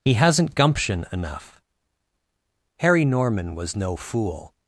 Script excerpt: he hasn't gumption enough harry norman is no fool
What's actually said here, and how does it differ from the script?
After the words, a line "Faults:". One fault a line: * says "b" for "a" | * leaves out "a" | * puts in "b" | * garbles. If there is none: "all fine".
he hasn't gumption enough harry norman was no fool
Faults:
* says "was" for "is"